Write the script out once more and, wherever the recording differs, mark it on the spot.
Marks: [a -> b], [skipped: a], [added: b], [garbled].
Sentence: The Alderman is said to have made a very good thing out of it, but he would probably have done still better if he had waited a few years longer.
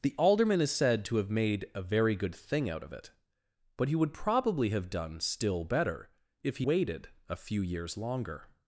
The Alderman is said to have made a very good thing out of it, but he would probably have done still better if he [skipped: had] waited a few years longer.